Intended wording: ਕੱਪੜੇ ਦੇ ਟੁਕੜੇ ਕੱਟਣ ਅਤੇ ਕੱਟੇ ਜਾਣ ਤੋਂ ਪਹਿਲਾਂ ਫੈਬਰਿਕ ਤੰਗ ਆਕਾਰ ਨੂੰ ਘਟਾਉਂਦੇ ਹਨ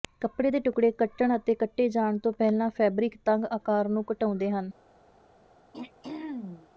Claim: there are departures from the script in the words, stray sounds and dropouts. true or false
true